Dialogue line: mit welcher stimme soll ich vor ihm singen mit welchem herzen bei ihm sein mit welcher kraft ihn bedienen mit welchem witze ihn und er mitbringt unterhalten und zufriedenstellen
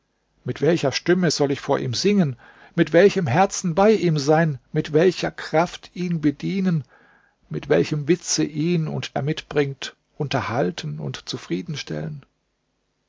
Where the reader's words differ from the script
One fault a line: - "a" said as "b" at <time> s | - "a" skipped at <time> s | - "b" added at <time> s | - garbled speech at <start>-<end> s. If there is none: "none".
none